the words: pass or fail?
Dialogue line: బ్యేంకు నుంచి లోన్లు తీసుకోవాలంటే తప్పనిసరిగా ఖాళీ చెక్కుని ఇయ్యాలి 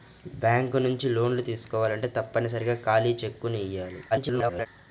fail